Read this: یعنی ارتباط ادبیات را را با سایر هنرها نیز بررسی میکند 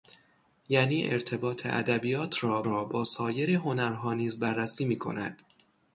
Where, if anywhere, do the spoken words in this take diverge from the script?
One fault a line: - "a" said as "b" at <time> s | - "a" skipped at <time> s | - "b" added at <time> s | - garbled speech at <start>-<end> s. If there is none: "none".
none